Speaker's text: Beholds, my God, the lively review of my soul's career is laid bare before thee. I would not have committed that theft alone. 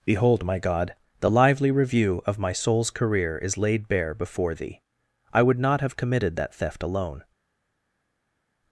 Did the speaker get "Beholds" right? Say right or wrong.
wrong